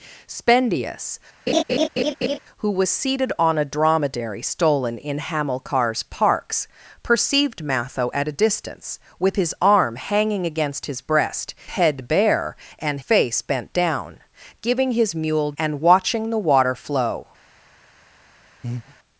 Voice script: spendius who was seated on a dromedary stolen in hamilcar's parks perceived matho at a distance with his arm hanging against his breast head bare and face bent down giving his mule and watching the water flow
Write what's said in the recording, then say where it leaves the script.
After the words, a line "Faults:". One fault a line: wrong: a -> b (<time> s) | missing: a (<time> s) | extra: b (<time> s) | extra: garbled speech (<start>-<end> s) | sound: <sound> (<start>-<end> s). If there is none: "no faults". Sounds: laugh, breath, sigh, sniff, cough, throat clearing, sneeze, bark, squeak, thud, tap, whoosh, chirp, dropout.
spendius who was seated on a dromedary stolen in hamilcar's parks perceived matho at a distance with his arm hanging against his breast head bare and face bent down giving his mule and watching the water flow
Faults:
sound: laugh (1.5-2.4 s)
sound: breath (18.6-19.0 s)